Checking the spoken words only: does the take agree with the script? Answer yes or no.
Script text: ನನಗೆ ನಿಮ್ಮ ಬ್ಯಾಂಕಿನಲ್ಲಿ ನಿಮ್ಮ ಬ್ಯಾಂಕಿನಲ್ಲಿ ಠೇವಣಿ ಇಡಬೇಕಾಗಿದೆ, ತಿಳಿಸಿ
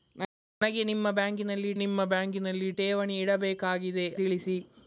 yes